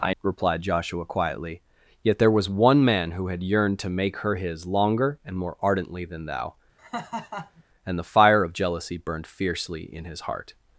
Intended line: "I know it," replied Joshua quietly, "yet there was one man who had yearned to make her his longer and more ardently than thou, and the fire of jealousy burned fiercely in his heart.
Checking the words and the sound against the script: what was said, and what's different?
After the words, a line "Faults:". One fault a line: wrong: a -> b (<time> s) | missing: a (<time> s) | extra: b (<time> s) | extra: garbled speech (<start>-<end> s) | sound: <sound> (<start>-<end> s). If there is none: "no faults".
"I," replied Joshua quietly, "yet there was one man who had yearned to make her his longer and more ardently than thou, and the fire of jealousy burned fiercely in his heart.
Faults:
missing: know it (0.1 s)
sound: laugh (6.8-7.6 s)